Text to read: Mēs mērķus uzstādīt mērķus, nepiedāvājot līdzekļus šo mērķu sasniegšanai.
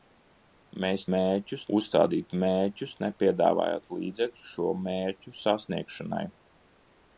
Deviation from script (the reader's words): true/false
false